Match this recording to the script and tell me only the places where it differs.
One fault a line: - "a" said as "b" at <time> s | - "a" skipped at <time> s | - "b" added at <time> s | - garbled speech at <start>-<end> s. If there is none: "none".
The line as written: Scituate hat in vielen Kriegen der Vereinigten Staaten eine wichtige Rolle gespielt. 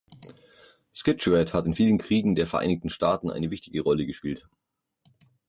none